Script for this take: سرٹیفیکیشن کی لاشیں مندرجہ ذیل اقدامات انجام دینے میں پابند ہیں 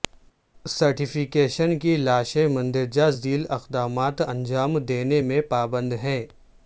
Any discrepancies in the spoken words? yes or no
no